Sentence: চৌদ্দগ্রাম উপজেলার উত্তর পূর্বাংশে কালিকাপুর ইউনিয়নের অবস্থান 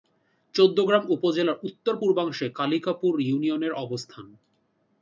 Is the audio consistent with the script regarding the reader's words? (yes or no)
yes